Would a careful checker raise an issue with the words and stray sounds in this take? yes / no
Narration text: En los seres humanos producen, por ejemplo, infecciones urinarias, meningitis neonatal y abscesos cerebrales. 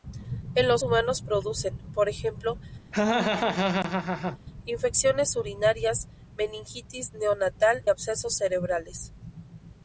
yes